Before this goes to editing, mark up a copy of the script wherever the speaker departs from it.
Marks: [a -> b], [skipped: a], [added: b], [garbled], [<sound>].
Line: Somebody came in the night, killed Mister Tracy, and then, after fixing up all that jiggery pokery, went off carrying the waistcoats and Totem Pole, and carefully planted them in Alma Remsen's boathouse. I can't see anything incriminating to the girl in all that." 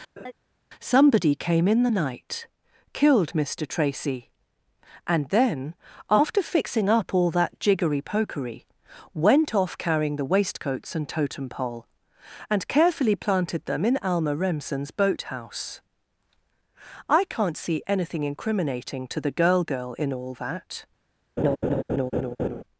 [laugh] Somebody came in the night, killed Mister Tracy, and then, after fixing up all that jiggery pokery, went off carrying the waistcoats and Totem Pole, and carefully planted them in Alma Remsen's boathouse. I can't see anything incriminating to the girl [added: girl] in all that." [laugh]